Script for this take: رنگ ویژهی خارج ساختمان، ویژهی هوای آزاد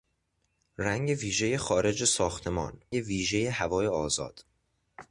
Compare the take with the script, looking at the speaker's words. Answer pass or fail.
pass